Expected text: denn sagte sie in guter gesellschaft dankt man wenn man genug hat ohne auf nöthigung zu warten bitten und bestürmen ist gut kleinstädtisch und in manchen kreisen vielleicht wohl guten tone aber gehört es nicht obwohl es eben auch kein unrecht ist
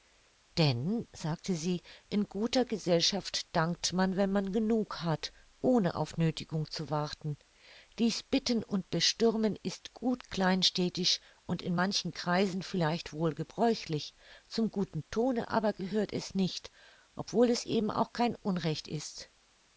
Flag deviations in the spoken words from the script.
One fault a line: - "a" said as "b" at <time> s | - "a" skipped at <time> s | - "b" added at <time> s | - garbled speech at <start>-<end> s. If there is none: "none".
- "dies" added at 8.0 s
- "gebräuchlich zum" added at 13.3 s